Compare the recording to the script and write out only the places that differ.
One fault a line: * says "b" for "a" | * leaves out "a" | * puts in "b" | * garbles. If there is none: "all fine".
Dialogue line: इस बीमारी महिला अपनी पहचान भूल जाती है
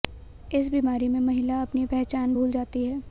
* puts in "में"